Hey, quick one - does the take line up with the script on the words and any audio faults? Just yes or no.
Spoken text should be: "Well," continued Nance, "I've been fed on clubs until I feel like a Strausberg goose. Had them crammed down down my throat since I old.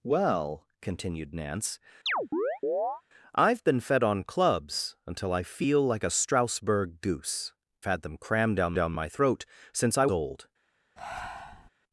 no